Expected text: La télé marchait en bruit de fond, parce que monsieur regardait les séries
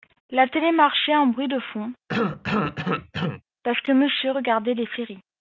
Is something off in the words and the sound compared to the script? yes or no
yes